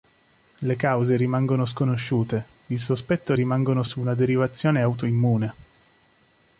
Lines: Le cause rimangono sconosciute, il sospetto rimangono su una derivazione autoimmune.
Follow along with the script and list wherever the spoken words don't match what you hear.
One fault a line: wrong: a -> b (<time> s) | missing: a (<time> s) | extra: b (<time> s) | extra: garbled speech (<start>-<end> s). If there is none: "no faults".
no faults